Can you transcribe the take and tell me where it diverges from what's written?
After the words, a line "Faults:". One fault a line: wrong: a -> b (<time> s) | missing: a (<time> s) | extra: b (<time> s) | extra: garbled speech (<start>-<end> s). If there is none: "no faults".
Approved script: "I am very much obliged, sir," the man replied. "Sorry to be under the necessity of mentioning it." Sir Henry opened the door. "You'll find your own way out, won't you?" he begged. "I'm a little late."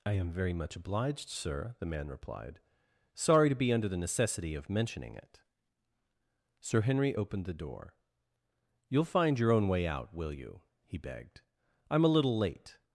"I am very much obliged, sir," the man replied. "Sorry to be under the necessity of mentioning it." Sir Henry opened the door. "You'll find your own way out, will you?" he begged. "I'm a little late."
Faults:
wrong: won't -> will (10.1 s)